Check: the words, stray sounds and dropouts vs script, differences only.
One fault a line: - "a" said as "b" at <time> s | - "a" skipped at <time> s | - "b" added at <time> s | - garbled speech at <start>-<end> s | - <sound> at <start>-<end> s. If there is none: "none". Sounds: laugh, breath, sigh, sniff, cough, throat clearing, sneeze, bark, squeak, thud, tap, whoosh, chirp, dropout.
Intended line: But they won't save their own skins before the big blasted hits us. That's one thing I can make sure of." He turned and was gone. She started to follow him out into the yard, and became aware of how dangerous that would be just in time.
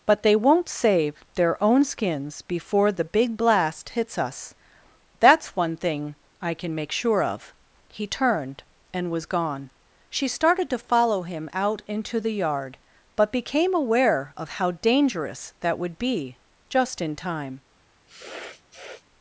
- "blasted" said as "blast" at 3.4 s
- "and" said as "but" at 13.2 s
- sniff at 18.1-19.0 s